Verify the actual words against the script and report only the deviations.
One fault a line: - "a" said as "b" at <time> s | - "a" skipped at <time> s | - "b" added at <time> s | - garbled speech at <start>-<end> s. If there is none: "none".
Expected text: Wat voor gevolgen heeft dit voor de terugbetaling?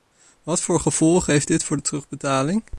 none